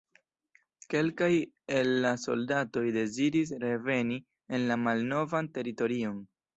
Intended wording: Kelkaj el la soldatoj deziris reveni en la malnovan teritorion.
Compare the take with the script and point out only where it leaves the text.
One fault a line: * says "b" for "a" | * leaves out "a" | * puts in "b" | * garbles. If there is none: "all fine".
all fine